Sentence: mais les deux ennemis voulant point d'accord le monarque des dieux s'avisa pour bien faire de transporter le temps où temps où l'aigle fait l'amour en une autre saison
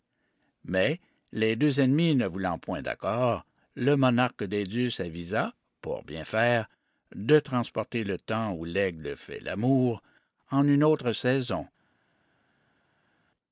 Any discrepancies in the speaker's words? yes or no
yes